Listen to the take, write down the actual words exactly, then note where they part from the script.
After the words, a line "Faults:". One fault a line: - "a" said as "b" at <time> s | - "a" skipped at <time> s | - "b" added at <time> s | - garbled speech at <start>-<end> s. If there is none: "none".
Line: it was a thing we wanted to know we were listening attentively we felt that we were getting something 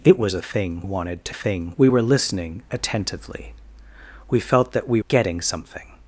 it was a thing wanted to thing we were listening attentively we felt that we getting something
Faults:
- "we" skipped at 0.8 s
- "know" said as "thing" at 1.3 s
- "were" skipped at 5.0 s